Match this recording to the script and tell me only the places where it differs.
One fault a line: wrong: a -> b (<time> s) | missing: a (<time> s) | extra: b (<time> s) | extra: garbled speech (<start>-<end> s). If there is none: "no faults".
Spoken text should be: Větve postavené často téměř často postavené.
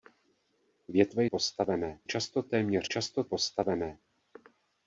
no faults